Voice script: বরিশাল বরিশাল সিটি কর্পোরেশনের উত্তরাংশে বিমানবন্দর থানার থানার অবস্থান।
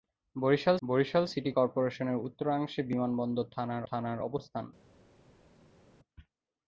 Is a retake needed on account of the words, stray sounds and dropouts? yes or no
no